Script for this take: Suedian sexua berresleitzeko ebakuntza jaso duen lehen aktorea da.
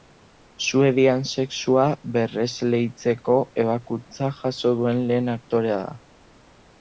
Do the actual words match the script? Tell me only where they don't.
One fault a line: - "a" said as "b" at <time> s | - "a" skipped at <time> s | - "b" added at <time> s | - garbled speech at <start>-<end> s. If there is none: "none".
none